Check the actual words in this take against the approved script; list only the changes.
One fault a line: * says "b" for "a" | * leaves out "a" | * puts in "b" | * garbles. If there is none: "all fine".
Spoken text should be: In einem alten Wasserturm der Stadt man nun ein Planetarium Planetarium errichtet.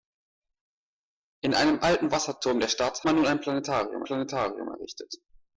all fine